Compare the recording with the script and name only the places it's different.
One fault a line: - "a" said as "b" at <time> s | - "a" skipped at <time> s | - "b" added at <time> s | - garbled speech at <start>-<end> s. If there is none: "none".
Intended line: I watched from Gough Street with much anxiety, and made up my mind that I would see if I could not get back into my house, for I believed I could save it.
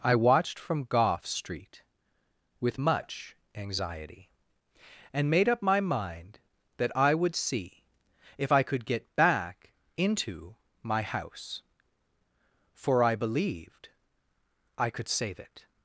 - "not" skipped at 8.9 s